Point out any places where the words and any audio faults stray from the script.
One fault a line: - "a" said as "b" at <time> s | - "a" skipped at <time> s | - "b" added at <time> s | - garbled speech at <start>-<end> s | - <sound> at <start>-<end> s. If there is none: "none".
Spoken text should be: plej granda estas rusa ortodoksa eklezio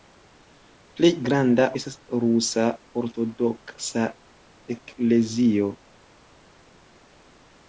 none